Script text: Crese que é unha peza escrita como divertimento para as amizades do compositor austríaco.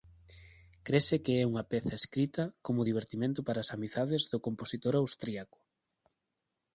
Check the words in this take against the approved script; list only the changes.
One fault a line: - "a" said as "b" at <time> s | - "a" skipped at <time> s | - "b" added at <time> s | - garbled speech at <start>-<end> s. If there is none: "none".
none